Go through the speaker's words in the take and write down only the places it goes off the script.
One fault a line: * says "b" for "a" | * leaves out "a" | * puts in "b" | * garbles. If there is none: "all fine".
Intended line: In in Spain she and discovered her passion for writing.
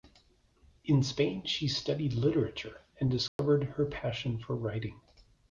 * leaves out "in"
* puts in "studied literature"